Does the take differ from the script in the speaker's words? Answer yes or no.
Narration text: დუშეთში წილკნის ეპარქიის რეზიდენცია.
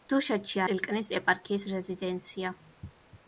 no